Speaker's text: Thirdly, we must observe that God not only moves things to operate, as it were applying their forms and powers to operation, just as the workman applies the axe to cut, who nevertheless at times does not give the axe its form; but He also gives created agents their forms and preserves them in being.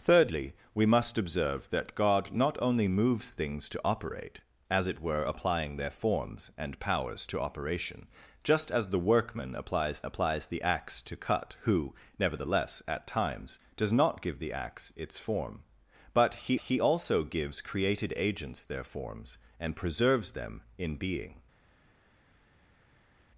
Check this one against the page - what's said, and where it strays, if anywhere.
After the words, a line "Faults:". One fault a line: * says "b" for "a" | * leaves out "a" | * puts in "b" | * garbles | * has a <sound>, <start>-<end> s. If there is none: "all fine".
Thirdly, we must observe that God not only moves things to operate, as it were applying their forms and powers to operation, just as the workman applies applies the axe to cut, who nevertheless at times does not give the axe its form; but He He also gives created agents their forms and preserves them in being.
Faults:
* puts in "applies"
* puts in "He"